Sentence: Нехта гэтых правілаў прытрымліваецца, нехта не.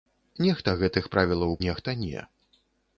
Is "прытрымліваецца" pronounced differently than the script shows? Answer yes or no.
yes